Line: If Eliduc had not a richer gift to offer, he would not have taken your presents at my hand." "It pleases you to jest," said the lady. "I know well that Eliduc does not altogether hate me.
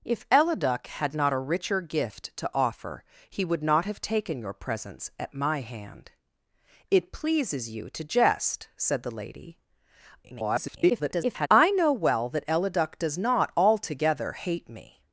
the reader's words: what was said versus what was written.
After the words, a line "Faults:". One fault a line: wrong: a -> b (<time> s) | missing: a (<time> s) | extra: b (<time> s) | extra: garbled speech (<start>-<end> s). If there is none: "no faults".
If Eliduc had not a richer gift to offer, he would not have taken your presents at my hand." "It pleases you to jest," said the lady. [garbled] "I know well that Eliduc does not altogether hate me.
Faults:
extra: garbled speech (10.2-11.5 s)